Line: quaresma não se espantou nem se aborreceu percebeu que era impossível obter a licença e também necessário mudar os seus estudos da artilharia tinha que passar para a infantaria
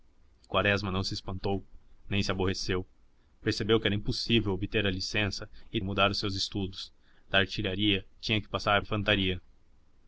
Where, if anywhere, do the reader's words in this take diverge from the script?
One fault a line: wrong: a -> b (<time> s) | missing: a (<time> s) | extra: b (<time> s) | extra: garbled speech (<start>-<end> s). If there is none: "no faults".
missing: também necessário (5.8 s)
missing: para (8.8 s)